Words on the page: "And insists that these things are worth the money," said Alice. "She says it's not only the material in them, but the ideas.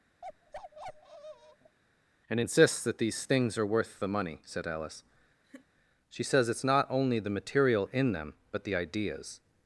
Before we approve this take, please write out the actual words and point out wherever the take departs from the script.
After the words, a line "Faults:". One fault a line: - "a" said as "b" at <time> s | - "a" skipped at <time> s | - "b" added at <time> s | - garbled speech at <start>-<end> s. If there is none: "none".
"And insists that these things are worth the money," said Alice. "She says it's not only the material in them, but the ideas.
Faults:
none